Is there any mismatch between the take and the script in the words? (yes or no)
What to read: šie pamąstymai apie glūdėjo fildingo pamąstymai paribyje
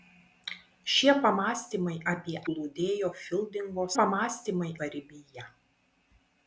no